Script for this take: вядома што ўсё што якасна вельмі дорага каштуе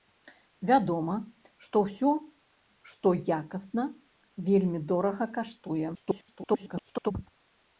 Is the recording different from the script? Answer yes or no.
yes